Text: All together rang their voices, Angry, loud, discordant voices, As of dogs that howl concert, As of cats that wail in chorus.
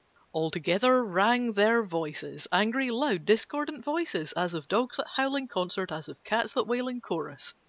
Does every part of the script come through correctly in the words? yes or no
no